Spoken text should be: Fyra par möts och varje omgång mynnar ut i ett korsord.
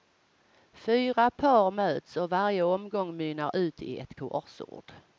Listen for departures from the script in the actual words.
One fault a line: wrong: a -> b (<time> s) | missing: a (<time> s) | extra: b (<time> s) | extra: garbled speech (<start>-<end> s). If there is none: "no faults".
no faults